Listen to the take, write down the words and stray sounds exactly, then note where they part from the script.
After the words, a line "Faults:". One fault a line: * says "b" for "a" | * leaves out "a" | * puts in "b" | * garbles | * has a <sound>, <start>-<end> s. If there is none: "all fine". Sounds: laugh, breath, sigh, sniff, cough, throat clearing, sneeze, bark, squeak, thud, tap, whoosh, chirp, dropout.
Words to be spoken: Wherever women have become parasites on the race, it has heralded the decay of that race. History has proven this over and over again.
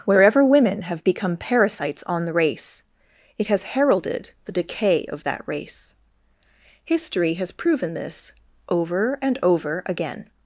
Wherever women have become parasites on the race, it has heralded the decay of that race. History has proven this over and over again.
Faults:
all fine